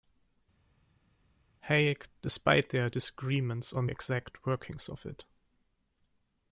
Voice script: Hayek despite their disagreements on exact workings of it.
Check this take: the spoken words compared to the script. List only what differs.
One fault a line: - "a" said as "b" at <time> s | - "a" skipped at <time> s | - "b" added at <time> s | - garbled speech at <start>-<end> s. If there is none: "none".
none